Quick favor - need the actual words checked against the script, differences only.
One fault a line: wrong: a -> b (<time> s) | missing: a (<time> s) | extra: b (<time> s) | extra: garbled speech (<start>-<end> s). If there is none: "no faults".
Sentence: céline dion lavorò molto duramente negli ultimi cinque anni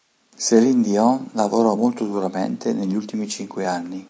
no faults